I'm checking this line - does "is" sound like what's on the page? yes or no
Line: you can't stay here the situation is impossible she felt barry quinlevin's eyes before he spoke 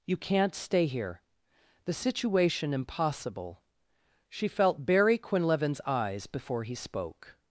no